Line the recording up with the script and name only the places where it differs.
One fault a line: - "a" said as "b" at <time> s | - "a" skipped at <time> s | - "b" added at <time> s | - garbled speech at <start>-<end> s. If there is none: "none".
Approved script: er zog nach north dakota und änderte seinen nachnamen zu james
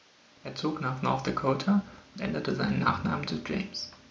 none